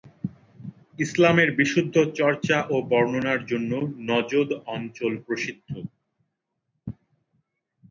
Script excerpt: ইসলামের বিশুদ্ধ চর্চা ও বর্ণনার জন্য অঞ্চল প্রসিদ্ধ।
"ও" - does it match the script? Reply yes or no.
yes